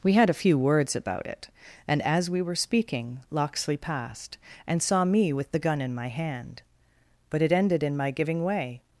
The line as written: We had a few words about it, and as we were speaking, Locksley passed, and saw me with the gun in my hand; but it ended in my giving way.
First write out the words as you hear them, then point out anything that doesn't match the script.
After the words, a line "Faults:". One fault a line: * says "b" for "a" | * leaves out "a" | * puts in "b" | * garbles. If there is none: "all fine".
We had a few words about it, and as we were speaking, Locksley passed, and saw me with the gun in my hand; but it ended in my giving way.
Faults:
all fine